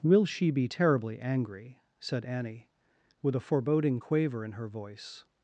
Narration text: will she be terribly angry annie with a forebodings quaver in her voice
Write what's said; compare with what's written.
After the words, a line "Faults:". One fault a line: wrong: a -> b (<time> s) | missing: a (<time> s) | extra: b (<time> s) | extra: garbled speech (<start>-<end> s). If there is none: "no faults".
will she be terribly angry said annie with a foreboding quaver in her voice
Faults:
extra: said (2.0 s)
wrong: forebodings -> foreboding (3.4 s)